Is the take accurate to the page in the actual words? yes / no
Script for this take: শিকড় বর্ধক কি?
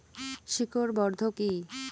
yes